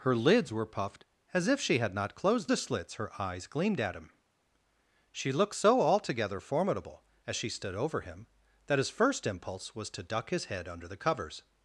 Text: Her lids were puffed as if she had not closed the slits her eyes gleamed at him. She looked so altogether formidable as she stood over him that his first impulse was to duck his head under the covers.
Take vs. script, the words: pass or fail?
pass